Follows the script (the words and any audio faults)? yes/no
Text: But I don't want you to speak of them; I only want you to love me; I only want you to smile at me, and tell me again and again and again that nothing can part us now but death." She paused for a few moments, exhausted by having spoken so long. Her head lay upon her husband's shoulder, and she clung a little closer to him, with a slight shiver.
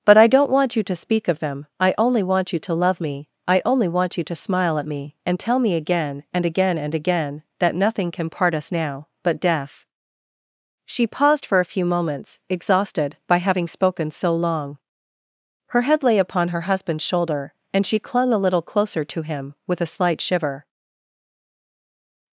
yes